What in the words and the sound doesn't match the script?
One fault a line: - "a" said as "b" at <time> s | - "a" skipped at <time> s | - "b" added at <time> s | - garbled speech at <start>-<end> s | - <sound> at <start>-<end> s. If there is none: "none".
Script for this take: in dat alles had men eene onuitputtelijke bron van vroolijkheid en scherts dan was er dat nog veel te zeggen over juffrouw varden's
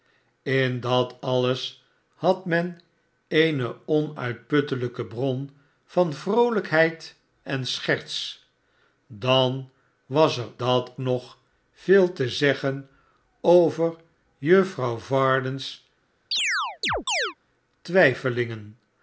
- chirp at 16.3-17.3 s